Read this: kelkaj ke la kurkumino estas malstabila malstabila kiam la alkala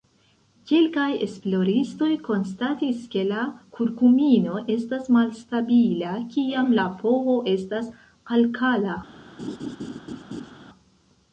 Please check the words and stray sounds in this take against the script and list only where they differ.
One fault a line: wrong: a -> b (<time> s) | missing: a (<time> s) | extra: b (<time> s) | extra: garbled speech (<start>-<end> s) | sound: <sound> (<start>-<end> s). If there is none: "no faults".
extra: esploristoj konstatis (1.2 s)
missing: malstabila (6.1 s)
extra: ph estas (7.0 s)
sound: laugh (9.4-10.5 s)